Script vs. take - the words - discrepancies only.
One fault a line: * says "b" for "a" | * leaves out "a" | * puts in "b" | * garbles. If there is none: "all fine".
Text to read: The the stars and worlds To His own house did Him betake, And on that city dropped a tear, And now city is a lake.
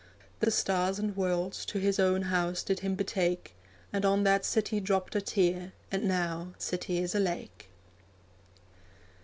all fine